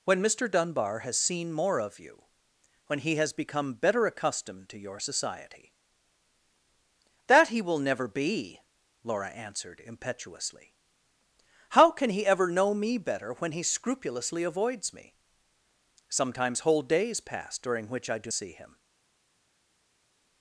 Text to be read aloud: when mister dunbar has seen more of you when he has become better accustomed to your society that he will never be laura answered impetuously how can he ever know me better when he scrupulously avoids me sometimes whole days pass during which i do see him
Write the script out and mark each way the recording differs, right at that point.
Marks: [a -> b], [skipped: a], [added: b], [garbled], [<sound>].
when mister dunbar has seen more of you when he has become better accustomed to your society that he will never be laura answered impetuously how can he ever know me better when he scrupulously avoids me sometimes whole days pass during which i do see him